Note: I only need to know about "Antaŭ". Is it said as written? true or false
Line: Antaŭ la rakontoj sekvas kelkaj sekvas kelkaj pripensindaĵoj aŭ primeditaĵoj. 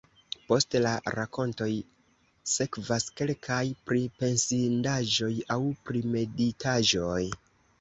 false